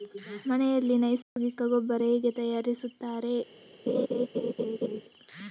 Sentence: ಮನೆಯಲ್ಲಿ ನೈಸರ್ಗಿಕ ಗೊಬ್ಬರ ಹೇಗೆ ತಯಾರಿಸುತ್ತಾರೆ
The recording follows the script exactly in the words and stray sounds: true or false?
false